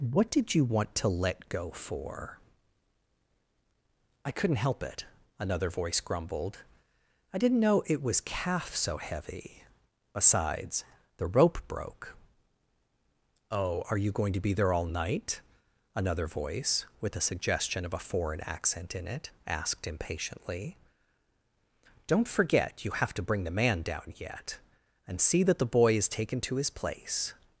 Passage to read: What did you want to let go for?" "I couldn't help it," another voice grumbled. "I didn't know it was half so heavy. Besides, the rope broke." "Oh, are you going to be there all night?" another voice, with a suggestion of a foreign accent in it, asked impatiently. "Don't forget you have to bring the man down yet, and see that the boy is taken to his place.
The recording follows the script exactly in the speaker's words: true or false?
false